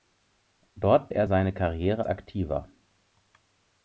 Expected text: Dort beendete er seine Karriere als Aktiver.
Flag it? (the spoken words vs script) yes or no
yes